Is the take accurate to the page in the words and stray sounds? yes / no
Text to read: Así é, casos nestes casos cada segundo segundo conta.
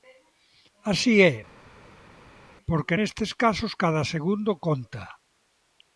no